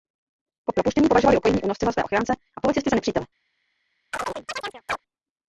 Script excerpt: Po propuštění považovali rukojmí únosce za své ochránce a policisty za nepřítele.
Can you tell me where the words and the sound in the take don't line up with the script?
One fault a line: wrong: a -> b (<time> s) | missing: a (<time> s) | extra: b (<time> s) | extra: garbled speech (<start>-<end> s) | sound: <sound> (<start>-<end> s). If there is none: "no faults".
sound: chirp (4.1-5.0 s)